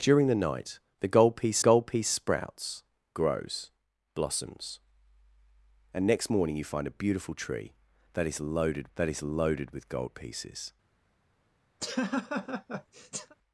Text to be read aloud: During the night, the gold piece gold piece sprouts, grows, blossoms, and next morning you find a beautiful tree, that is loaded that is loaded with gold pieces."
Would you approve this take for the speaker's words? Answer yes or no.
yes